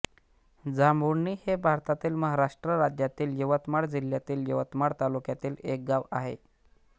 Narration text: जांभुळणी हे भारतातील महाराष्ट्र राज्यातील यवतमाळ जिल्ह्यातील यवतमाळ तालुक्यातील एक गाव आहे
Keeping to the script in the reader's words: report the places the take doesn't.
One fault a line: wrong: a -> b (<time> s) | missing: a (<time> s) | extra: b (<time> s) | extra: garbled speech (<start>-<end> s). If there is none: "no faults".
no faults